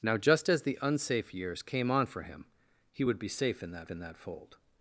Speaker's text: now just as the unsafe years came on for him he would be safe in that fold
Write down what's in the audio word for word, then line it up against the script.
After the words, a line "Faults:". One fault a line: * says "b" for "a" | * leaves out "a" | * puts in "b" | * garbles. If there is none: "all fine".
now just as the unsafe years came on for him he would be safe in that in that fold
Faults:
* puts in "in that"